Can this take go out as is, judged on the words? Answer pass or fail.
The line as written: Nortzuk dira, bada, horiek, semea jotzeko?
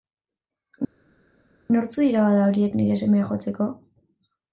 fail